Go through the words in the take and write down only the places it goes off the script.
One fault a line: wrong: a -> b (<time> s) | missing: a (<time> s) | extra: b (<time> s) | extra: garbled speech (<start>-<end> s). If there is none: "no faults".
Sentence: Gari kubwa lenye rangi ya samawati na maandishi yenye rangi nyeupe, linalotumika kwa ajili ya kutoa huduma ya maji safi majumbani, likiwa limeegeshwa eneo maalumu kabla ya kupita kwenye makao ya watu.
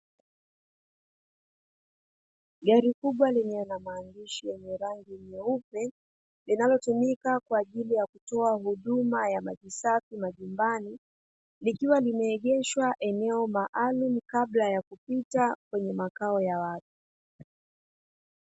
missing: rangi ya samawati (3.6 s)